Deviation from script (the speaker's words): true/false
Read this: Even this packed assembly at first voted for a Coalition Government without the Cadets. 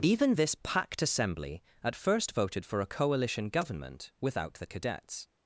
false